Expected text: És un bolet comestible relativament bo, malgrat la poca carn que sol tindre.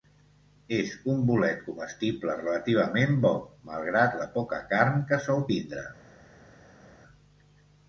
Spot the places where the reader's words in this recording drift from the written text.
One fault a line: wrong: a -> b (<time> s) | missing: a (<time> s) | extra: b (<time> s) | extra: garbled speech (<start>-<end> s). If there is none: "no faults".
no faults